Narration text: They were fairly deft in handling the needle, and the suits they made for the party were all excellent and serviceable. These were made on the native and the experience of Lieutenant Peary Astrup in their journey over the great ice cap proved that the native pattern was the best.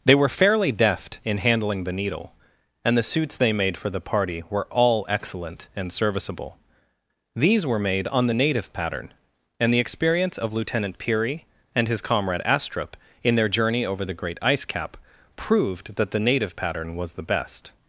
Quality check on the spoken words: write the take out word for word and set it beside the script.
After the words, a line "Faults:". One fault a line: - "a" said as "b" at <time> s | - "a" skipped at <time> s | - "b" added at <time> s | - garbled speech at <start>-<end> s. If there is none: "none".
They were fairly deft in handling the needle, and the suits they made for the party were all excellent and serviceable. These were made on the native pattern, and the experience of Lieutenant Peary and his comrade Astrup in their journey over the great ice cap proved that the native pattern was the best.
Faults:
- "pattern" added at 8.7 s
- "and his comrade" added at 11.7 s